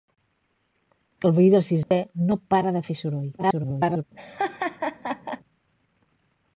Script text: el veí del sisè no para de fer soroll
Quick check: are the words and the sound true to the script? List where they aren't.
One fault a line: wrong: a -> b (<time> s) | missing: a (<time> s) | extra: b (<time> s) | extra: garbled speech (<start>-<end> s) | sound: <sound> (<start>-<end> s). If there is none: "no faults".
sound: dropout (1.8-1.9 s)
extra: garbled speech (3.4-4.0 s)
sound: laugh (4.2-5.4 s)